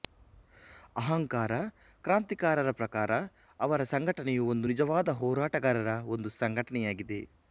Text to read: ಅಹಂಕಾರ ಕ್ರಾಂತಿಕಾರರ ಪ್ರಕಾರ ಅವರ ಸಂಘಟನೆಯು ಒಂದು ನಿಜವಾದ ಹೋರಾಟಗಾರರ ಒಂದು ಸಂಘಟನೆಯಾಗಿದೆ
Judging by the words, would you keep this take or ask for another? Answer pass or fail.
pass